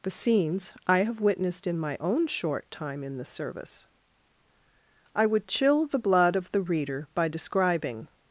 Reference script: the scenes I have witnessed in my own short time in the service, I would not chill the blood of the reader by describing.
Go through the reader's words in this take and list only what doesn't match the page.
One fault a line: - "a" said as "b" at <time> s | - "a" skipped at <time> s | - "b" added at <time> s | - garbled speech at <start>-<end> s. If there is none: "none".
- "not" skipped at 5.5 s